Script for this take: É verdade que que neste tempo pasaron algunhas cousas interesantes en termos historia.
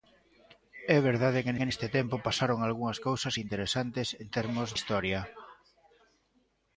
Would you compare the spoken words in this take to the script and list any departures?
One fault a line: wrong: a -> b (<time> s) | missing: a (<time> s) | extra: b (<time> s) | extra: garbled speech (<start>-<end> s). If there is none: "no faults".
no faults